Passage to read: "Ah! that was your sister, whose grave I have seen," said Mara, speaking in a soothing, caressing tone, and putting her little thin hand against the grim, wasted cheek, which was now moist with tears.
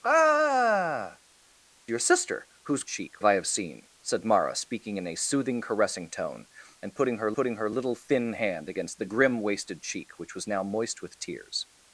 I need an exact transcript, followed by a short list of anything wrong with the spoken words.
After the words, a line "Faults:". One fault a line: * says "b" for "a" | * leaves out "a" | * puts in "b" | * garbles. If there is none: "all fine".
"Ah! your sister, whose cheek I have seen," said Mara, speaking in a soothing, caressing tone, and putting her putting her little thin hand against the grim, wasted cheek, which was now moist with tears.
Faults:
* leaves out "that was"
* says "cheek" for "grave"
* puts in "putting her"